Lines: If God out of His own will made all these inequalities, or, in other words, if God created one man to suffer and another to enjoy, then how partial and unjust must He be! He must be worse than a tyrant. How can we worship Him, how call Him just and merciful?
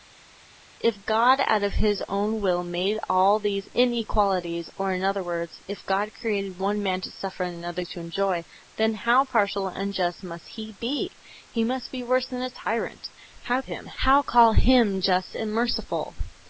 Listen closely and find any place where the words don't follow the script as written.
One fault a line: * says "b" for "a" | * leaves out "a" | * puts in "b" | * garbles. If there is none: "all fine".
* leaves out "can we worship"